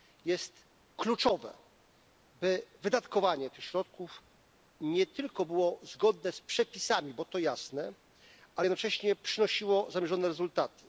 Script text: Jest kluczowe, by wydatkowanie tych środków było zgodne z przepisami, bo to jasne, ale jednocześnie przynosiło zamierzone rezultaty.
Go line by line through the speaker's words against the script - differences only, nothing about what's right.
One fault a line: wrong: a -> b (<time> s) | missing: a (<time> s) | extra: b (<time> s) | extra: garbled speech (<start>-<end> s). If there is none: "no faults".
extra: nie tylko (4.8 s)